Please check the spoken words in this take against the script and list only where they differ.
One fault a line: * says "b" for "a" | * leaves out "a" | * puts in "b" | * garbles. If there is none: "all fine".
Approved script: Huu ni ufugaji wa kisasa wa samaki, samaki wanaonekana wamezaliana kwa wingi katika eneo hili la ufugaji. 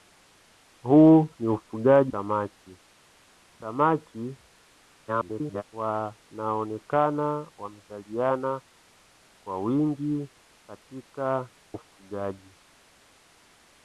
* leaves out "wa kisasa wa"
* garbles
* leaves out "eneo hili la"